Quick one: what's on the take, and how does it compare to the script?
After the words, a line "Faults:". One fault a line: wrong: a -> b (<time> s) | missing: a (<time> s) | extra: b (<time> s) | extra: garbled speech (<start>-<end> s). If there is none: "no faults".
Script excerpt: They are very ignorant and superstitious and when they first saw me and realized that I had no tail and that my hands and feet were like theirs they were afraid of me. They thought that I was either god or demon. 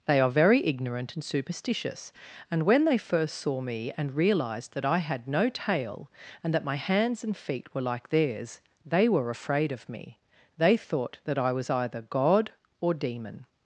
They are very ignorant and superstitious and when they first saw me and realized that I had no tail and that my hands and feet were like theirs they were afraid of me. They thought that I was either god or demon.
Faults:
no faults